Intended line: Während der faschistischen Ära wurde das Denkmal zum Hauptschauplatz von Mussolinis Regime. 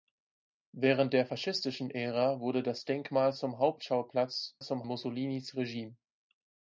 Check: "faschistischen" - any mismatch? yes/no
no